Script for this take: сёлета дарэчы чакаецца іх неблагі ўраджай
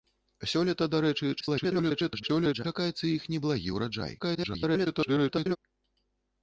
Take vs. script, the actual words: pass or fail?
fail